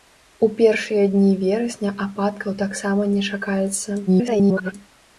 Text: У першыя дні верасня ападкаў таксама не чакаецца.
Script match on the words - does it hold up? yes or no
no